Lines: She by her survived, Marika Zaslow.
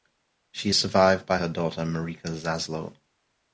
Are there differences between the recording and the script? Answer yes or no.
yes